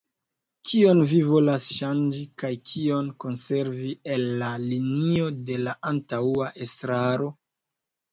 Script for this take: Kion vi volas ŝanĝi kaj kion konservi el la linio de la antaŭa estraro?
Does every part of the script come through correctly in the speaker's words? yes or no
yes